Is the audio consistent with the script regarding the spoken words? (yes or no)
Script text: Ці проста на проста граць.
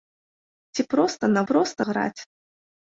yes